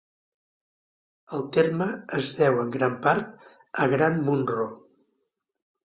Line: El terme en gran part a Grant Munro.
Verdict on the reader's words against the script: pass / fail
fail